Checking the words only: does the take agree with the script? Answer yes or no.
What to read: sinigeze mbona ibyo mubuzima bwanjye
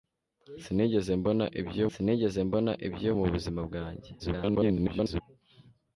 no